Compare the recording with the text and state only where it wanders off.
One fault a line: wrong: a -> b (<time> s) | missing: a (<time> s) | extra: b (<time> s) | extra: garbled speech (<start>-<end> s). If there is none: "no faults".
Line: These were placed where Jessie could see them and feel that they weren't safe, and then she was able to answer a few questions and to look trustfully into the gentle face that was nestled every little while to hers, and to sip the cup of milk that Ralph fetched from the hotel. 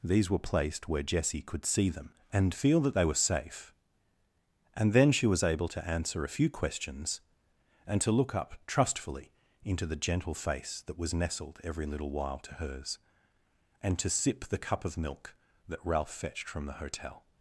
wrong: weren't -> were (3.0 s)
extra: up (8.4 s)